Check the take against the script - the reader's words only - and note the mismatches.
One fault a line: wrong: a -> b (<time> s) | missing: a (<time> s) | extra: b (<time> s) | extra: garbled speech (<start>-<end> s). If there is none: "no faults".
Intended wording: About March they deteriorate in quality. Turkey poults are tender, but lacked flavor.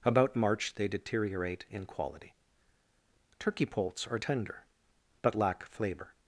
wrong: lacked -> lack (5.4 s)